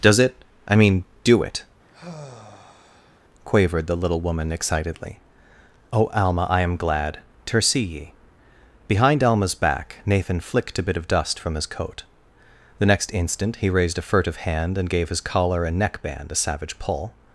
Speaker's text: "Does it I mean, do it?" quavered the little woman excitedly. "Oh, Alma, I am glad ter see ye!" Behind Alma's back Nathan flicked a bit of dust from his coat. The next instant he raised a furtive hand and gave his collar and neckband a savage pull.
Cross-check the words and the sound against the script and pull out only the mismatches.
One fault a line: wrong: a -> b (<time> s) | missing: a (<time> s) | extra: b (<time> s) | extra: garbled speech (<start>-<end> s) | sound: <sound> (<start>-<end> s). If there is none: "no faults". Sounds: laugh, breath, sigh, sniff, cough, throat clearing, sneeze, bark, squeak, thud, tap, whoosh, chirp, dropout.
sound: sigh (1.9-3.2 s)